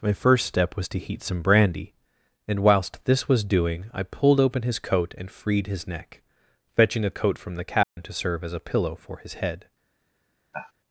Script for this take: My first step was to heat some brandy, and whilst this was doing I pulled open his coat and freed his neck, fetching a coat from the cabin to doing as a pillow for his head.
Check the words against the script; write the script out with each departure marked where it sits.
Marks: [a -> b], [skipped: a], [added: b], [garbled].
My first step was to heat some brandy, and whilst this was doing I pulled open his coat and freed his neck, fetching a coat from the cabin to [doing -> serve] as a pillow for his head.